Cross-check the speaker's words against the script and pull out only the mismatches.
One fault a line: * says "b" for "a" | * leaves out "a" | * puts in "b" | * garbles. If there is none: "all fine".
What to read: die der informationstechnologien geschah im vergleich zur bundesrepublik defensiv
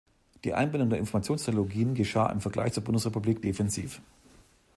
* puts in "einbindung"